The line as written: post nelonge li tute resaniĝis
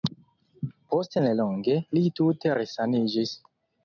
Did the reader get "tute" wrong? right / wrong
right